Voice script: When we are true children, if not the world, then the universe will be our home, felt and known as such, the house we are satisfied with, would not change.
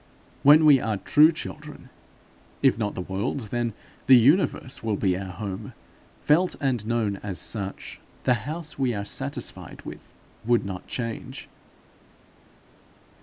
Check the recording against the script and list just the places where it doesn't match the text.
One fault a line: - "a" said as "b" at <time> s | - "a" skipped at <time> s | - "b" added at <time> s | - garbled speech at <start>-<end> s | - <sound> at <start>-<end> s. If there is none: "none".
none